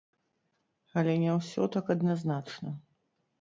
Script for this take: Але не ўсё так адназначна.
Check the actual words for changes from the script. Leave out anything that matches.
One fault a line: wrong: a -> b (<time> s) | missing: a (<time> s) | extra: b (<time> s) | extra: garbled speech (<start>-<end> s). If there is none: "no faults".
no faults